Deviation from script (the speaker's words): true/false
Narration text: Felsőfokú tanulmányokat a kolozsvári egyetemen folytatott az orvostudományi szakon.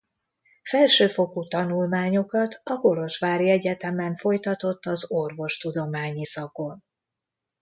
false